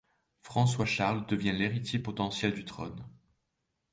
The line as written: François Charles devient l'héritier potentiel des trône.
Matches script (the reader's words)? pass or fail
fail